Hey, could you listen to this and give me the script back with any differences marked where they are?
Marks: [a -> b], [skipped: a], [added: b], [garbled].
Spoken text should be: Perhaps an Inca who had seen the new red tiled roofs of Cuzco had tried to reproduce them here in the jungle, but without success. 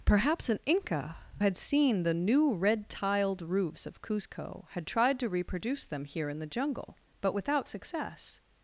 Perhaps an Inca [skipped: who] had seen the new red tiled roofs of Cuzco had tried to reproduce them here in the jungle, but without success.